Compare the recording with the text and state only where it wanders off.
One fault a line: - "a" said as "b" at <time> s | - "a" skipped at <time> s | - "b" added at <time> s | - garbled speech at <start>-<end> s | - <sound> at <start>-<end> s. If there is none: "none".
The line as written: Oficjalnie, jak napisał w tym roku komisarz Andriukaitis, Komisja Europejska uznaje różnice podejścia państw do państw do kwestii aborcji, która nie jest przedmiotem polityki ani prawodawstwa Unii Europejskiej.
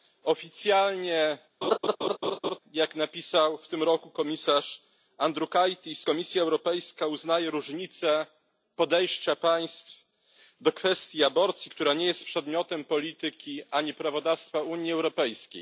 - laugh at 1.6-2.6 s
- "państw do" skipped at 10.7 s